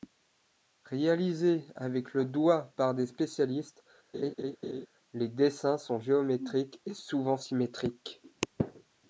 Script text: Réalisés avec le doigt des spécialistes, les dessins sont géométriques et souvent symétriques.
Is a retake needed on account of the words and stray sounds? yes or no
yes